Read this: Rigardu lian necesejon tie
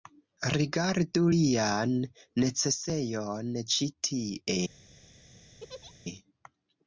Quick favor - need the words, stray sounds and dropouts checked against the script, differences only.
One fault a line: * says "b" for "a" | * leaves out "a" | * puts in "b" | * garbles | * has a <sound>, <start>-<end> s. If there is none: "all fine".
* puts in "ĉi"
* has a laugh, 5.6-5.9 s